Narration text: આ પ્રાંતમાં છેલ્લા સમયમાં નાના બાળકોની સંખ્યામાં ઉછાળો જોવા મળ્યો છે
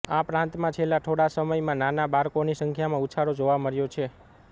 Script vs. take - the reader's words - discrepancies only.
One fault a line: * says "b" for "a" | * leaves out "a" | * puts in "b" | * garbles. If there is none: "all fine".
* puts in "થોડા"